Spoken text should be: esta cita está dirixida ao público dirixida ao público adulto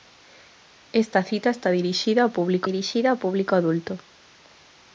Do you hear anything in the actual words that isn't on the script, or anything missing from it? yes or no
no